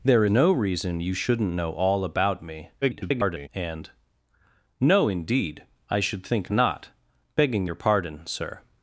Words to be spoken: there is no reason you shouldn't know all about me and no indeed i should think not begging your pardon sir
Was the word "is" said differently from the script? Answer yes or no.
yes